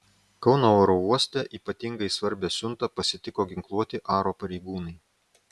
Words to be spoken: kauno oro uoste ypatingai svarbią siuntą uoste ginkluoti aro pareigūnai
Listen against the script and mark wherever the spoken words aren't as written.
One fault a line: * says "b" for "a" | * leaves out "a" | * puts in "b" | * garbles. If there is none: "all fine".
* says "pasitiko" for "uoste"